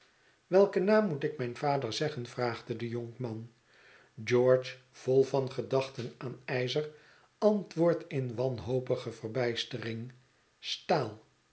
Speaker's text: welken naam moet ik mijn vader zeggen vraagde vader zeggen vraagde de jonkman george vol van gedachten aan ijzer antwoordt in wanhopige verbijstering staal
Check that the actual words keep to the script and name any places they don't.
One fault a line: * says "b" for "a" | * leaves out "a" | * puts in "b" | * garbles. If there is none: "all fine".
* leaves out "vader zeggen vraagde"